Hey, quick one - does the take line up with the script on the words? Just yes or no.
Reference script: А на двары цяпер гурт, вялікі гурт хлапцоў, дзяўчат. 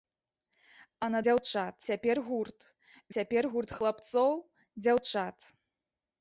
no